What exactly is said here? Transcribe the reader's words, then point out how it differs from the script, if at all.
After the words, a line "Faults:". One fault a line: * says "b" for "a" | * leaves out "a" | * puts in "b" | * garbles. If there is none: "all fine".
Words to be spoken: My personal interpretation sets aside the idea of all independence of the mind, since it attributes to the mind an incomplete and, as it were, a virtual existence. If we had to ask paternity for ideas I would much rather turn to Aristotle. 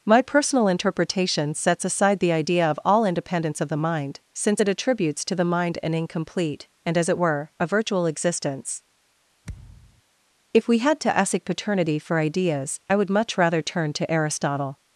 My personal interpretation sets aside the idea of all independence of the mind, since it attributes to the mind an incomplete and, as it were, a virtual existence. If we had to ask paternity for ideas I would much rather turn to Aristotle.
Faults:
all fine